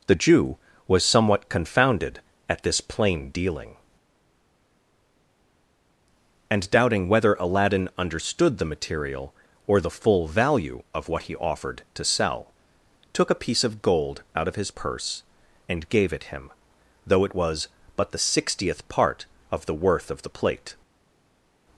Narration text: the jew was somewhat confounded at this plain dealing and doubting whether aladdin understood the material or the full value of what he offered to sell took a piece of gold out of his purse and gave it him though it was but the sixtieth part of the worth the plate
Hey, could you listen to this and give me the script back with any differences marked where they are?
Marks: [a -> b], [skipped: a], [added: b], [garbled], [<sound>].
the jew was somewhat confounded at this plain dealing and doubting whether aladdin understood the material or the full value of what he offered to sell took a piece of gold out of his purse and gave it him though it was but the sixtieth part of the worth [added: of] the plate